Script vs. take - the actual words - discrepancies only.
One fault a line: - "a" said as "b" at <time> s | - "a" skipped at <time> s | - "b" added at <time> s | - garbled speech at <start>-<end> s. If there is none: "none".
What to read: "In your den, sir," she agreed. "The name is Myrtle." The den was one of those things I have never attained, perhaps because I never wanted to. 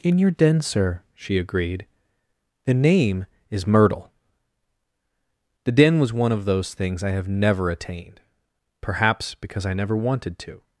none